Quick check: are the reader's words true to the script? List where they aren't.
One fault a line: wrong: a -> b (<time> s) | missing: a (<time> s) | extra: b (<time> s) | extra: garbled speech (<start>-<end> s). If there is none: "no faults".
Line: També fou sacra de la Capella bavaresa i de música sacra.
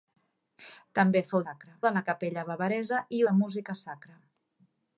no faults